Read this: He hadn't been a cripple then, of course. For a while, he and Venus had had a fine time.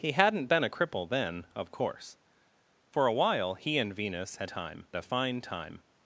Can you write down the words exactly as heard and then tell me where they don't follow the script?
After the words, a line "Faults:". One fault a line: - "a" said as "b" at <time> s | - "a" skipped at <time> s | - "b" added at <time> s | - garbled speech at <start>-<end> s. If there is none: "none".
He hadn't been a cripple then, of course. For a while, he and Venus had time a fine time.
Faults:
- "had" said as "time" at 4.5 s